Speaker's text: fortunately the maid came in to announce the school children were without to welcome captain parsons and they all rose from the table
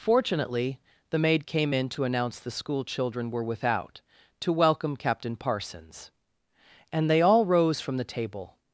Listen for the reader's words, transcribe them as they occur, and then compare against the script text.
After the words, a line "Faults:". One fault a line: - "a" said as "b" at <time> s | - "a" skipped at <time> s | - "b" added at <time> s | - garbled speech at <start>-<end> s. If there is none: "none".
fortunately the maid came in to announce the school children were without to welcome captain parsons and they all rose from the table
Faults:
none